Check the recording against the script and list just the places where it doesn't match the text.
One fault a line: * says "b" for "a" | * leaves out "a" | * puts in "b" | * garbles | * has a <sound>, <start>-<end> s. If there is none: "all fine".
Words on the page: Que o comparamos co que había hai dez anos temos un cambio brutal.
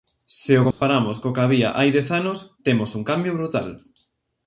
* says "Se" for "Que"
* has a dropout, 0.7-0.8 s